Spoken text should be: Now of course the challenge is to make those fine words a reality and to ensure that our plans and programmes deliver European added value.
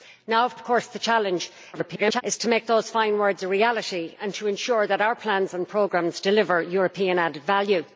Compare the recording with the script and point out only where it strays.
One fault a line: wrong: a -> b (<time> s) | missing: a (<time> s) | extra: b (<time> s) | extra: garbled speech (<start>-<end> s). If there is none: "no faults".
extra: of (0.5 s)
extra: garbled speech (1.7-2.2 s)